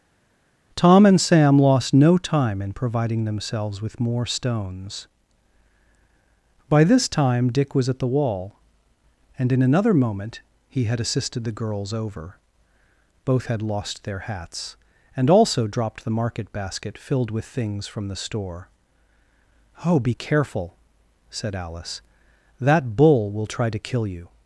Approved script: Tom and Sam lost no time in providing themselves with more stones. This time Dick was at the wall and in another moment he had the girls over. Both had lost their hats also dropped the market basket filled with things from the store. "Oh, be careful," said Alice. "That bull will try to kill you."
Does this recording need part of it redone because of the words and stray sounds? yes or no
yes